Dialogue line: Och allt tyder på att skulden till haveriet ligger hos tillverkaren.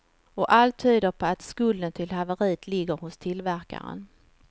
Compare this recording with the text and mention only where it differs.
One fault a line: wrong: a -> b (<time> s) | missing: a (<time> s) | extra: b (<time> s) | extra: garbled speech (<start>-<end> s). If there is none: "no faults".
no faults